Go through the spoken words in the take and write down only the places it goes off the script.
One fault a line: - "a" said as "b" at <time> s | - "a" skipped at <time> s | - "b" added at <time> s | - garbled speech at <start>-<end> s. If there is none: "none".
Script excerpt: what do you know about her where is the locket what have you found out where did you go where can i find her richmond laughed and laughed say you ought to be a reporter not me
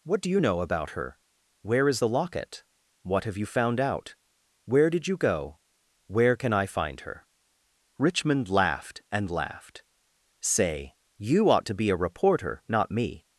none